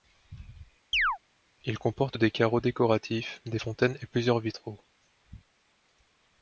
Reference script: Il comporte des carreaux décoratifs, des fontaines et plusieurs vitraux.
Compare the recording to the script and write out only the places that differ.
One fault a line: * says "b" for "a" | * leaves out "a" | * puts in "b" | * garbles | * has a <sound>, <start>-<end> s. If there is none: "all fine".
* has a chirp, 0.9-1.2 s